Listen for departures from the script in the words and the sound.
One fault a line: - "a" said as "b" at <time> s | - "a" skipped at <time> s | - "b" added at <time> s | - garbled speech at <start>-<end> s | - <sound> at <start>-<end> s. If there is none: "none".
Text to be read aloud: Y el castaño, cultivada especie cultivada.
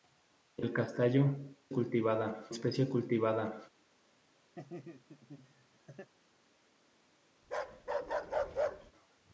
- laugh at 4.6-6.1 s
- bark at 7.4-8.9 s